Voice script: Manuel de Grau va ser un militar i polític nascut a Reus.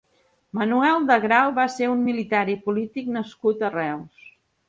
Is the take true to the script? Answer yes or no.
yes